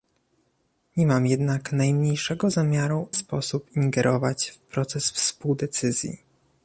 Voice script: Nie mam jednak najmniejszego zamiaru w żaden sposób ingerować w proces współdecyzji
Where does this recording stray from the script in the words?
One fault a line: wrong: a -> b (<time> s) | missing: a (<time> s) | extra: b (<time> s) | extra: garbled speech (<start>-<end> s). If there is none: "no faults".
missing: w żaden (3.1 s)